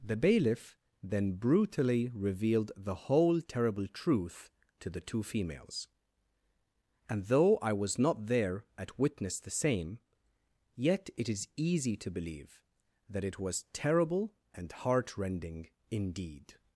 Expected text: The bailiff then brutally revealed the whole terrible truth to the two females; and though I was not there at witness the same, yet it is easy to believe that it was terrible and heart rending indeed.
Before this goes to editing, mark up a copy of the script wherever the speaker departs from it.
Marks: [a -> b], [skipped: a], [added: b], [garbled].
The bailiff then brutally revealed the whole terrible truth to the two females; and though I was not there at witness the same, yet it is easy to believe that it was terrible and heart rending indeed.